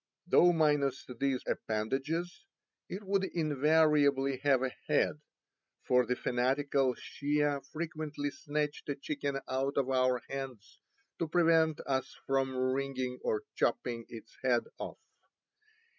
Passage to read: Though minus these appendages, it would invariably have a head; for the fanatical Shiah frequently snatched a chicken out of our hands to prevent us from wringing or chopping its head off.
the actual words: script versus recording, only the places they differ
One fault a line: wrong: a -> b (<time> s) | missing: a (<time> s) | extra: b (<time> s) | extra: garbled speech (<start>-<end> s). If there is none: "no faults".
no faults